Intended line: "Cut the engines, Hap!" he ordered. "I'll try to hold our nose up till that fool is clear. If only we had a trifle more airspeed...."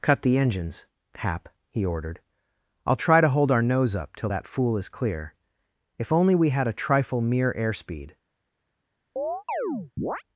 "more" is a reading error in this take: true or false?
true